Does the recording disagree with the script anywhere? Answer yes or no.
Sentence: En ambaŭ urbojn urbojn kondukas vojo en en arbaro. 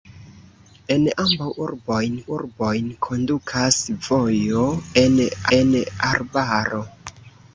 no